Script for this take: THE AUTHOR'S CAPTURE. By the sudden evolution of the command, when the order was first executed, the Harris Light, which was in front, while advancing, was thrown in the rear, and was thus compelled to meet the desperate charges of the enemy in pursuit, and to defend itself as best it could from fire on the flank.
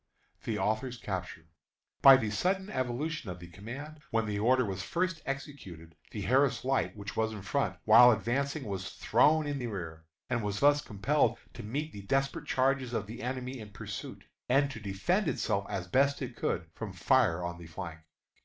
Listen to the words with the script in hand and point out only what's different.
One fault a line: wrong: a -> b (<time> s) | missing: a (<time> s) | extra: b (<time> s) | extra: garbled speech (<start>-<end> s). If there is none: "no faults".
no faults